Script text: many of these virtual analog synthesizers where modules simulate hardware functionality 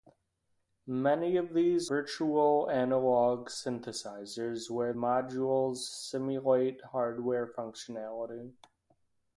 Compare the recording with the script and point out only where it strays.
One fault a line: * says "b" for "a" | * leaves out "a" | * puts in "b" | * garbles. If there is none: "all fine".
all fine